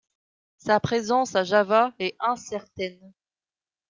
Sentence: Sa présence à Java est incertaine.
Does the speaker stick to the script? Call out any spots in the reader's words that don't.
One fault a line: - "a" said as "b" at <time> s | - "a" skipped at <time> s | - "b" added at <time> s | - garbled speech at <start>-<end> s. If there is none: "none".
none